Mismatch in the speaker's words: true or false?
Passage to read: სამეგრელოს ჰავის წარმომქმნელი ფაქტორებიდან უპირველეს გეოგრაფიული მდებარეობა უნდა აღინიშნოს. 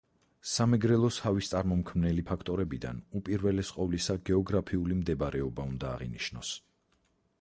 true